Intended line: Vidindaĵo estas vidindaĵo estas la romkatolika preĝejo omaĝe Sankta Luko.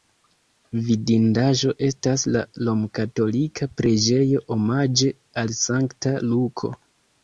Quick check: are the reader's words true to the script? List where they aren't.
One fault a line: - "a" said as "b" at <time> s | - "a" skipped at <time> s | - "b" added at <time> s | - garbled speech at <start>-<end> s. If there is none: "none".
- "vidindaĵo estas" skipped at 2.2 s
- "al" added at 5.5 s